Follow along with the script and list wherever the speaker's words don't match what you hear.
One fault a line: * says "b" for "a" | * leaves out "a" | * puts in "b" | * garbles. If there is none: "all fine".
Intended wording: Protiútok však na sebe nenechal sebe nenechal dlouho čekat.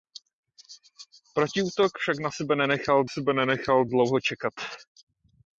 all fine